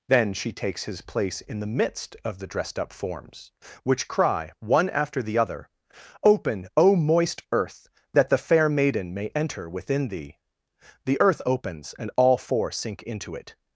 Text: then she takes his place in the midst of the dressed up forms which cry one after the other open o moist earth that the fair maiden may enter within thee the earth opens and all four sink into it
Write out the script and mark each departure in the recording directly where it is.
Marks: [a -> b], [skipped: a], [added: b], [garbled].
then she takes his place in the midst of the dressed up forms which cry one after the other open o moist earth that the fair maiden may enter within thee the earth opens and all four sink into it